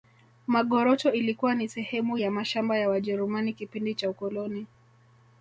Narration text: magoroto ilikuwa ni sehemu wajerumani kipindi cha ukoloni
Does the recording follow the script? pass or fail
fail